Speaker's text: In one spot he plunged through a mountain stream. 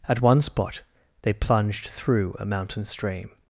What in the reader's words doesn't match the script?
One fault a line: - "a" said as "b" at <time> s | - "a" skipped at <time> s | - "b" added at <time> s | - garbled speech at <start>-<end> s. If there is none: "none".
- "In" said as "At" at 0.1 s
- "he" said as "they" at 1.2 s